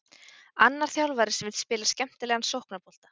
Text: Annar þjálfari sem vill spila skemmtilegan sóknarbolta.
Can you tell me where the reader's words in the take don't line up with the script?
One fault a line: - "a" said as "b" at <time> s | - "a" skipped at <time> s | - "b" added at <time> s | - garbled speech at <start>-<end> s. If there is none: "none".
none